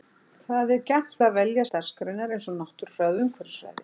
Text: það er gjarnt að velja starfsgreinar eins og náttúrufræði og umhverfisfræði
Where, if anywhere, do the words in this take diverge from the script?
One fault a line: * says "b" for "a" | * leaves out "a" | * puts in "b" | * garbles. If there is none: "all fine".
all fine